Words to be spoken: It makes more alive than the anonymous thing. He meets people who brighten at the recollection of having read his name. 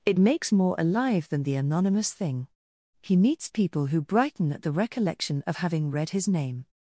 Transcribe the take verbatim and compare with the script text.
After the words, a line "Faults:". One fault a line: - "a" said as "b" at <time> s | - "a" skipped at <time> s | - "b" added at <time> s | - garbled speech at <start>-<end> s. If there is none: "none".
It makes more alive than the anonymous thing. He meets people who brighten at the recollection of having read his name.
Faults:
none